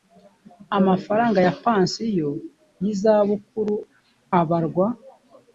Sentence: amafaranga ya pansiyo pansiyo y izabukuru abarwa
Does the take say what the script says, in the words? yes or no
no